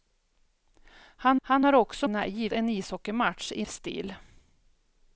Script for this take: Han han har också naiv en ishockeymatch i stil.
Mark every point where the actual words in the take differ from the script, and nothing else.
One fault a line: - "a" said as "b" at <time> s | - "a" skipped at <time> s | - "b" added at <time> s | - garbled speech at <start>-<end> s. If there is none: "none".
none